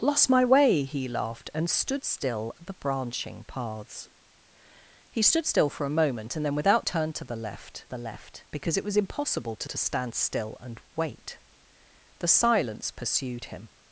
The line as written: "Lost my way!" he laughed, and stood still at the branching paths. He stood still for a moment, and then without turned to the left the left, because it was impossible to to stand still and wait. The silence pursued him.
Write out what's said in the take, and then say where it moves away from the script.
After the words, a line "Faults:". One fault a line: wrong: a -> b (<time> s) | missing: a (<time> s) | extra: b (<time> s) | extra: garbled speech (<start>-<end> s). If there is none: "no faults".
"Lost my way!" he laughed, and stood still at the branching paths. He stood still for a moment, and then without turned to the left the left, because it was impossible to to stand still and wait. The silence pursued him.
Faults:
no faults